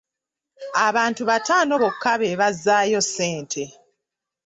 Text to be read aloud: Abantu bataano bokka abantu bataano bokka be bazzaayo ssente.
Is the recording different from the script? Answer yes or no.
yes